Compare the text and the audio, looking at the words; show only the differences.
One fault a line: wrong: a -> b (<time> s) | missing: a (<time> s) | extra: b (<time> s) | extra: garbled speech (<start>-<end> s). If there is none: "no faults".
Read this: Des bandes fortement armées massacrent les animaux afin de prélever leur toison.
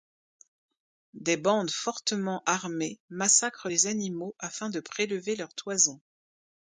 no faults